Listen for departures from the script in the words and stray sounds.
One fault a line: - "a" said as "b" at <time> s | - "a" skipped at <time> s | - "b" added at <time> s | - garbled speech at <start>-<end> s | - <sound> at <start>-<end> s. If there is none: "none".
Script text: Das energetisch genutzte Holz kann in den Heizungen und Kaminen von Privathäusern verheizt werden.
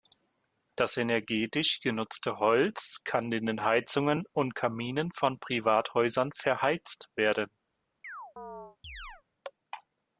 - chirp at 8.0-9.2 s